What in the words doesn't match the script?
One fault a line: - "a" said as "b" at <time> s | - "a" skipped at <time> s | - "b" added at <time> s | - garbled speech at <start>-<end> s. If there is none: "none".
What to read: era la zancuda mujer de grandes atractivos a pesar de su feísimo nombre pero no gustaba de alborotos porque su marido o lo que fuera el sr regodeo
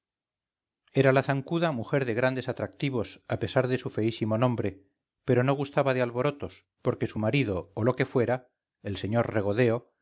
none